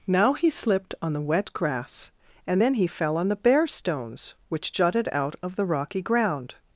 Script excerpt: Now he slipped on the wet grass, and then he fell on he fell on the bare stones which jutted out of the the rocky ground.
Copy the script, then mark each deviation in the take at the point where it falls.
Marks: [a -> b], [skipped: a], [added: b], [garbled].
Now he slipped on the wet grass, and then he fell on [skipped: he fell on] the bare stones which jutted out of the [skipped: the] rocky ground.